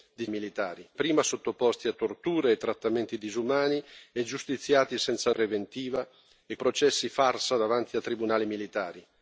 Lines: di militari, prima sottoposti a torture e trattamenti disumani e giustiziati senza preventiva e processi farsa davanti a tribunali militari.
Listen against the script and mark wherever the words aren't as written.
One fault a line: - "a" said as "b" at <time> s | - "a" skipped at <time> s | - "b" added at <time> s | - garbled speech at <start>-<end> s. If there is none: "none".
none